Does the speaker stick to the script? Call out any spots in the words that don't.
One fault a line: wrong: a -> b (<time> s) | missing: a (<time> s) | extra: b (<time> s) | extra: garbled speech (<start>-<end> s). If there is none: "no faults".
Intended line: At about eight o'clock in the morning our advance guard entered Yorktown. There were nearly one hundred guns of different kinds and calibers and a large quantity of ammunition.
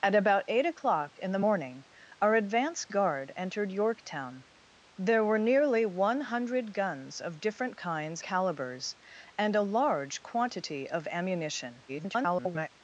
missing: and (8.2 s)
extra: garbled speech (11.9-12.7 s)